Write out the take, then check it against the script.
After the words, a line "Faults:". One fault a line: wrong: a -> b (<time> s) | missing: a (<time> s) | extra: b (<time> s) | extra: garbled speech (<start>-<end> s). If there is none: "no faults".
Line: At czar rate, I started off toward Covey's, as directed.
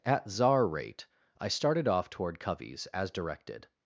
At czar rate, I started off toward Covey's, as directed.
Faults:
no faults